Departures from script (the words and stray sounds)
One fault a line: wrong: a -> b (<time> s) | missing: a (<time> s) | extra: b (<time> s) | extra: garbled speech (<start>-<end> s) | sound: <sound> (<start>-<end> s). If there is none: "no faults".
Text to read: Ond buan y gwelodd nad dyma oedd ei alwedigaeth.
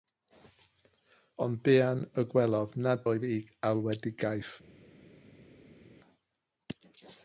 missing: dyma (3.0 s)